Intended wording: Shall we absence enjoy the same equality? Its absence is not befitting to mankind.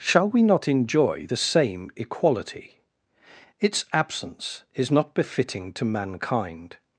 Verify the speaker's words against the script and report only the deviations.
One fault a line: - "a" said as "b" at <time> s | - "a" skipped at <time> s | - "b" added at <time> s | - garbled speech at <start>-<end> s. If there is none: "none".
- "absence" said as "not" at 0.4 s